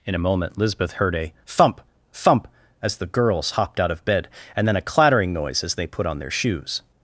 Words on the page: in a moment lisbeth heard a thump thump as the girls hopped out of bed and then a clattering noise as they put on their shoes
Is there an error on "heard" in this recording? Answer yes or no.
no